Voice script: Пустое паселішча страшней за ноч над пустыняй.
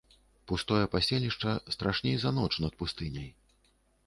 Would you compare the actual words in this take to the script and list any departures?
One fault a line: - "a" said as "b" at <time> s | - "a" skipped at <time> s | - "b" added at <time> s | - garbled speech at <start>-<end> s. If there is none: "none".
none